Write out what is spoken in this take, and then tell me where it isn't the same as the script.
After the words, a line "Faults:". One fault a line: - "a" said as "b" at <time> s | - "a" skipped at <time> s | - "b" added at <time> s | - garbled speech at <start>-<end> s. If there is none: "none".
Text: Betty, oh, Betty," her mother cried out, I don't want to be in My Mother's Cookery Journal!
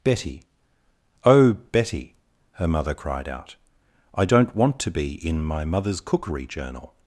Betty, oh, Betty," her mother cried out, I don't want to be in My Mother's Cookery Journal!
Faults:
none